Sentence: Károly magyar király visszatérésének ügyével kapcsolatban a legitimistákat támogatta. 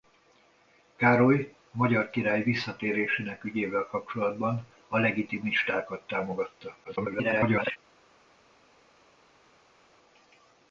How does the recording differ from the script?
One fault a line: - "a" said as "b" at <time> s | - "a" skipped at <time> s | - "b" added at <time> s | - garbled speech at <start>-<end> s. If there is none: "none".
- garbled speech at 6.8-7.8 s